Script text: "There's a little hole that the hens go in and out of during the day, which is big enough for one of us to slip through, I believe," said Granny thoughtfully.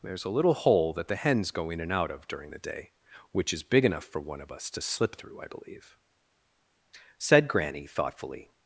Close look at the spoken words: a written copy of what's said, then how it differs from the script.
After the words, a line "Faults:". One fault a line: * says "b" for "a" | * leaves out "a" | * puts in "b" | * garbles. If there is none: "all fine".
"There's a little hole that the hens go in and out of during the day, which is big enough for one of us to slip through, I believe," said Granny thoughtfully.
Faults:
all fine